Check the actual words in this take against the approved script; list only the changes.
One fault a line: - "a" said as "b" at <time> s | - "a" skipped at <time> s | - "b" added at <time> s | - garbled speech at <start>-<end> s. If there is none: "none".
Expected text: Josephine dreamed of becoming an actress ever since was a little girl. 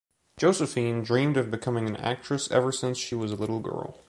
- "she" added at 3.0 s